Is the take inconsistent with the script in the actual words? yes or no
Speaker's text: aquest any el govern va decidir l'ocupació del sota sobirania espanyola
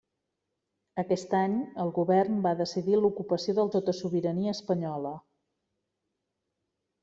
no